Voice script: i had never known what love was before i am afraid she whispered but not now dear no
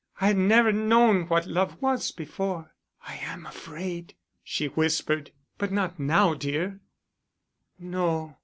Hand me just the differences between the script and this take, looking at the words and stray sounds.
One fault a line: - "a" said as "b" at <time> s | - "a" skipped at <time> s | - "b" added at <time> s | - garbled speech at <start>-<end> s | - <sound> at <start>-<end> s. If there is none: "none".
none